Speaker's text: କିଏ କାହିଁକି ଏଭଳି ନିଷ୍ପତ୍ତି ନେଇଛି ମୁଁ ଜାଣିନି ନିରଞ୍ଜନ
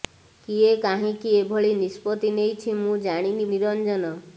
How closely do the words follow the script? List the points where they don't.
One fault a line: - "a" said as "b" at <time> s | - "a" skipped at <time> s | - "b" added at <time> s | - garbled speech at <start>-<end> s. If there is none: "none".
none